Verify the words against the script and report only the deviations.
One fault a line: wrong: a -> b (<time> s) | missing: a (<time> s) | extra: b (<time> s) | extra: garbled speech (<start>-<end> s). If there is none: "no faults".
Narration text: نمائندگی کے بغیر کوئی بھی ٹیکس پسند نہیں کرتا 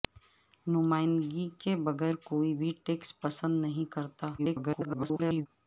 extra: garbled speech (4.4-5.5 s)